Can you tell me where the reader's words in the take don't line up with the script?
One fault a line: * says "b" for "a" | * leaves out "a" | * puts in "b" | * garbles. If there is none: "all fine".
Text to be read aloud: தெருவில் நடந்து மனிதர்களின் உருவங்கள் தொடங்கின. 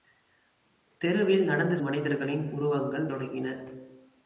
all fine